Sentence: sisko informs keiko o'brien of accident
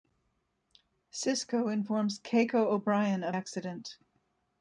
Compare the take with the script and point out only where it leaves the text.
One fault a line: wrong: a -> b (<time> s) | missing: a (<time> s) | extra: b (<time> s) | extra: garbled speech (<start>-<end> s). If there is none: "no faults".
no faults